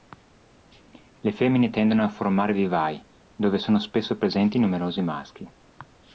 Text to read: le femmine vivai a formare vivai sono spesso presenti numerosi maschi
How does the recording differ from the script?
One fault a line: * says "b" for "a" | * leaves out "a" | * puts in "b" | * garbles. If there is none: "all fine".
* says "tendono" for "vivai"
* puts in "dove"